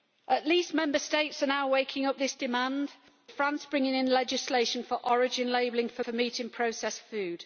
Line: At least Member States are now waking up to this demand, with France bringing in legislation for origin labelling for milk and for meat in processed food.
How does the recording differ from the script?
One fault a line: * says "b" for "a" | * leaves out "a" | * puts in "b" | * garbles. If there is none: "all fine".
* leaves out "to"
* leaves out "with"
* leaves out "milk and"